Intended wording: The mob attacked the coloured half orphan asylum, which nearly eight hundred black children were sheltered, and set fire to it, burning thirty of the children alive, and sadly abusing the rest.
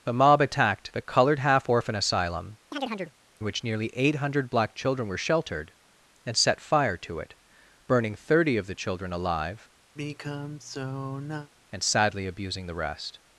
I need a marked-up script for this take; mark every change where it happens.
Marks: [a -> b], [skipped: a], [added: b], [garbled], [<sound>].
The mob attacked the coloured half orphan asylum, [chirp] which nearly eight hundred black children were sheltered, and set fire to it, burning thirty of the children alive, [sigh] and sadly abusing the rest.